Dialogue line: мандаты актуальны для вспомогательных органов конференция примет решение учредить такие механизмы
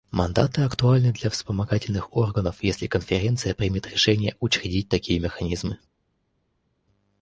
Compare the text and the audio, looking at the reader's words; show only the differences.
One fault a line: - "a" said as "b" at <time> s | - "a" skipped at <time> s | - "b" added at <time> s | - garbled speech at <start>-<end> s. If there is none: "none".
- "если" added at 2.6 s